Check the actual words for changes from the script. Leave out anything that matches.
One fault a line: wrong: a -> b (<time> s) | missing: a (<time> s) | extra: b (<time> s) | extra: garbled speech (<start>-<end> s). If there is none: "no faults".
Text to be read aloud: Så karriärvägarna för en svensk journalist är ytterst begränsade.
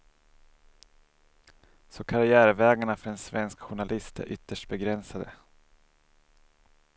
no faults